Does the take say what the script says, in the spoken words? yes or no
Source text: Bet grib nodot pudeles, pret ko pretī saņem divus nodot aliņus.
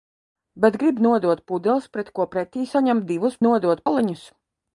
yes